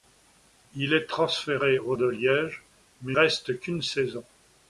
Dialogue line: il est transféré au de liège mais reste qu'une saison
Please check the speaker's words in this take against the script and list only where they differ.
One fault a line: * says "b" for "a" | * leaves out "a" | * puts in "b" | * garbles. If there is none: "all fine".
all fine